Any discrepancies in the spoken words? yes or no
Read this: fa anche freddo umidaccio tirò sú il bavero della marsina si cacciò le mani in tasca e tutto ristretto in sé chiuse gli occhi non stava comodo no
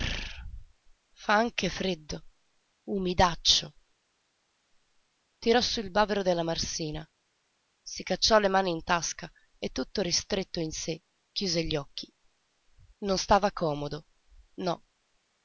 no